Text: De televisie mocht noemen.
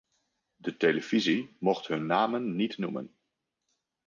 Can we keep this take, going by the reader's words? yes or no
no